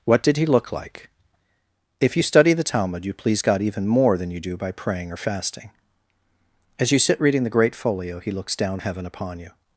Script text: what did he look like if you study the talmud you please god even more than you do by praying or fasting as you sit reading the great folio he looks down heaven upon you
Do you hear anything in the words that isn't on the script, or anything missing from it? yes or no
no